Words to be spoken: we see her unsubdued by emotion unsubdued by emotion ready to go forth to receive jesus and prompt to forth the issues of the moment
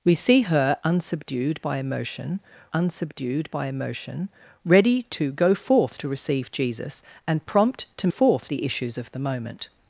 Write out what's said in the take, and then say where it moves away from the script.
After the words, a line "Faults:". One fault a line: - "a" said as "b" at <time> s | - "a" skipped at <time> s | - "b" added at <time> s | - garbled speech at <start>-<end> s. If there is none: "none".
we see her unsubdued by emotion unsubdued by emotion ready to go forth to receive jesus and prompt to forth the issues of the moment
Faults:
none